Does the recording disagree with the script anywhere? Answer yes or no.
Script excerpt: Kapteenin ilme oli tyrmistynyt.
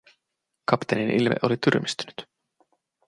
no